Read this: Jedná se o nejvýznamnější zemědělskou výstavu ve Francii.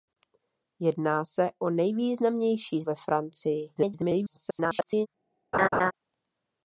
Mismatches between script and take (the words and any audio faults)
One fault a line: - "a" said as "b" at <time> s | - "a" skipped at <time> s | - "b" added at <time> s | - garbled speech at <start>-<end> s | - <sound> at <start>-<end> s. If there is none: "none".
- "zemědělskou výstavu" skipped at 2.8 s
- garbled speech at 3.8-5.1 s
- laugh at 5.5-5.9 s